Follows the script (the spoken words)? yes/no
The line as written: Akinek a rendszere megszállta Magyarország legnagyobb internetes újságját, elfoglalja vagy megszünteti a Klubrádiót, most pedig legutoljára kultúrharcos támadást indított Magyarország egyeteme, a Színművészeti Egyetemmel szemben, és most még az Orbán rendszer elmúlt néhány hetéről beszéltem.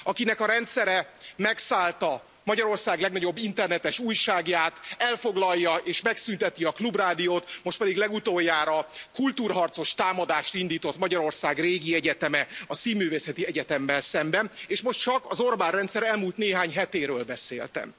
no